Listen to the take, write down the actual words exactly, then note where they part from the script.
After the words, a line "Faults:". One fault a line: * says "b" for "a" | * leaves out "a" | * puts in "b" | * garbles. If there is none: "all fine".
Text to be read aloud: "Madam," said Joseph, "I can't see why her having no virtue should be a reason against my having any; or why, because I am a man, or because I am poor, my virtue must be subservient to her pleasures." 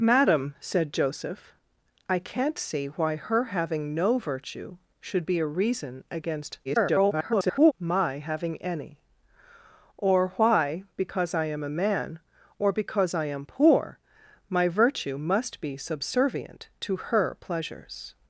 "Madam," said Joseph, "I can't see why her having no virtue should be a reason against [garbled] my having any; or why, because I am a man, or because I am poor, my virtue must be subservient to her pleasures."
Faults:
* garbles